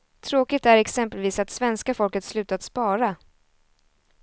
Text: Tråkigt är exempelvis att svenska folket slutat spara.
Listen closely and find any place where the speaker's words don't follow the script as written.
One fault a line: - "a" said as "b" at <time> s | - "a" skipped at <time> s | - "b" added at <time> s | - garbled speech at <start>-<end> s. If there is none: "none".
none